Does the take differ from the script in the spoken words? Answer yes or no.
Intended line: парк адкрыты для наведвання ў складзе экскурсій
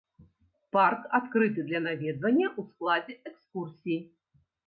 no